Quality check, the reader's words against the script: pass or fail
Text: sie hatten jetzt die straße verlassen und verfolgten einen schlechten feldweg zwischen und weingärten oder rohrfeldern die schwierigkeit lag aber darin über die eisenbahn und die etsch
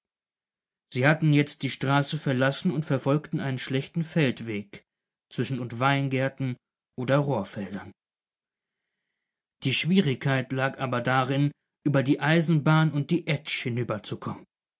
pass